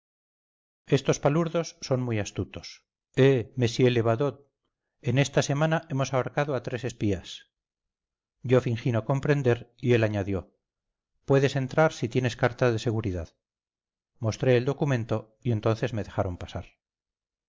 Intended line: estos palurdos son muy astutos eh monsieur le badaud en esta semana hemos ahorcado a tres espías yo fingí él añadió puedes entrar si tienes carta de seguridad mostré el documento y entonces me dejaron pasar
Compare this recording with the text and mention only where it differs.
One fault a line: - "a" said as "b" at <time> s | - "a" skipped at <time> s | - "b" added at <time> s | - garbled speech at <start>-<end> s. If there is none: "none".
- "no comprender y" added at 8.9 s